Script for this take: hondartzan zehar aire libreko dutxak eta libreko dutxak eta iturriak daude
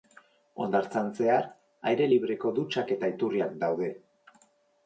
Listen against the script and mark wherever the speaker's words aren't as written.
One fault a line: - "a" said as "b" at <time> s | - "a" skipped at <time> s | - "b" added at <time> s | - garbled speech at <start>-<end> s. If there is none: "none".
- "libreko dutxak eta" skipped at 3.1 s